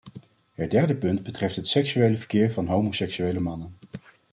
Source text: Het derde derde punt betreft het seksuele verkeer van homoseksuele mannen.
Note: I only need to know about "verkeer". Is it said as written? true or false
true